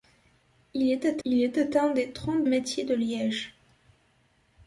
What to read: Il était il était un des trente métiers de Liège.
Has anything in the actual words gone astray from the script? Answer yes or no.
no